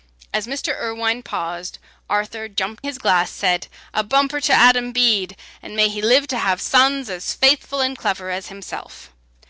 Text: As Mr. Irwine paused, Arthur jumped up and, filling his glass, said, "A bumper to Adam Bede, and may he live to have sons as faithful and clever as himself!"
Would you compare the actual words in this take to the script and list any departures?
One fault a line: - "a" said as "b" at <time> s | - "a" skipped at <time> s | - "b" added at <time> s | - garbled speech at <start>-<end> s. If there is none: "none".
- "up and filling" skipped at 2.9 s